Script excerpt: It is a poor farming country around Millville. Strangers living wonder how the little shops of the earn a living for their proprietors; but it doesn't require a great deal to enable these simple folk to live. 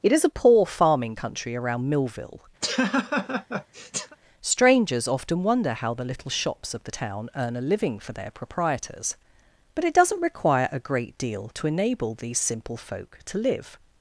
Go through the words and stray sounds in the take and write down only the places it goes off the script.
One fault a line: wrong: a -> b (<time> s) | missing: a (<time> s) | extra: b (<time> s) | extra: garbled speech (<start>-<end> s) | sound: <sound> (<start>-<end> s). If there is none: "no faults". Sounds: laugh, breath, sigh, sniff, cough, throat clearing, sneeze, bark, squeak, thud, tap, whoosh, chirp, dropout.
sound: laugh (2.6-4.2 s)
wrong: living -> often (5.1 s)
extra: town (6.9 s)